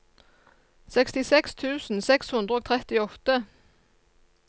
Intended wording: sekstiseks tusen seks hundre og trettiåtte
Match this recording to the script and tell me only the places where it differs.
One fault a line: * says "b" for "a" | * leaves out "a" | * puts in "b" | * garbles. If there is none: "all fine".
all fine